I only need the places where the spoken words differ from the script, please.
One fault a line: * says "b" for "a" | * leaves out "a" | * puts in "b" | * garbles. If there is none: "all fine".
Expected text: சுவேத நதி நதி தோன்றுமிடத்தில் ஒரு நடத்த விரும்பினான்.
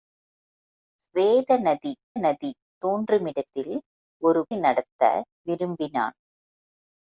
all fine